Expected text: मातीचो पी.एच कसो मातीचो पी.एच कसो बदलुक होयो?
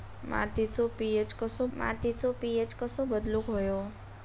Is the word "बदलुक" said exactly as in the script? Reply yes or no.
yes